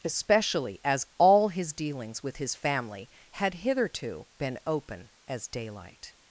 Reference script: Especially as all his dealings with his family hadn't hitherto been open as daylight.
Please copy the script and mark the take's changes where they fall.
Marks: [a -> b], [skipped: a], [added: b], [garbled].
Especially as all his dealings with his family [hadn't -> had] hitherto been open as daylight.